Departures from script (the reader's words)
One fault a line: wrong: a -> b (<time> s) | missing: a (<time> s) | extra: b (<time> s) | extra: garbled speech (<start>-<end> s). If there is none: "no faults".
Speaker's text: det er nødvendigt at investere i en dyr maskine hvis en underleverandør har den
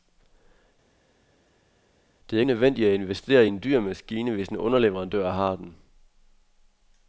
no faults